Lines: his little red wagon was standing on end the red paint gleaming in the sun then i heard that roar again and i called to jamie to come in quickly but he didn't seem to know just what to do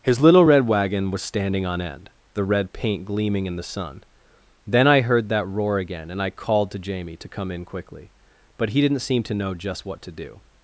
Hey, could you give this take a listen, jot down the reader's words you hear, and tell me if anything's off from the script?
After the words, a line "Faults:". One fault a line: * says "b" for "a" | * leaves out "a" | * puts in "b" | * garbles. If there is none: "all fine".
his little red wagon was standing on end the red paint gleaming in the sun then i heard that roar again and i called to jamie to come in quickly but he didn't seem to know just what to do
Faults:
all fine